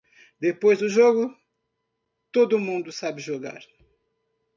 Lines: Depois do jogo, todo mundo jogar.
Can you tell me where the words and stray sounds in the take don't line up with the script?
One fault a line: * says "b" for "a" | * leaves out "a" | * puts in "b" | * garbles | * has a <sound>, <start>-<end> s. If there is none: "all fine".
* puts in "sabe"